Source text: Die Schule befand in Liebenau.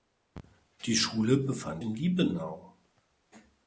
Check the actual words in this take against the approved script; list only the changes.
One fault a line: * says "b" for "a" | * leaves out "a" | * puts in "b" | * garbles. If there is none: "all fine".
all fine